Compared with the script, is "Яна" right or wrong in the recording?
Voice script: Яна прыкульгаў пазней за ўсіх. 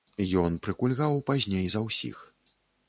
wrong